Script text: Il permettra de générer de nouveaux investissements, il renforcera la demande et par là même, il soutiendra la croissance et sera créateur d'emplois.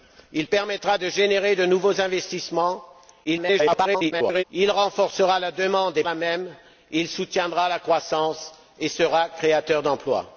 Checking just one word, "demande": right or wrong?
right